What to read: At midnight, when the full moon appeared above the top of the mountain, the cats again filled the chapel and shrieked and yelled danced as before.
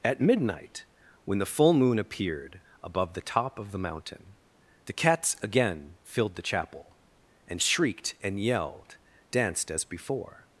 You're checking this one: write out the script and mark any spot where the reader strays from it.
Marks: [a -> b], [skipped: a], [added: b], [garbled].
At midnight, when the full moon appeared above the top of the mountain, the cats again filled the chapel and shrieked and yelled danced as before.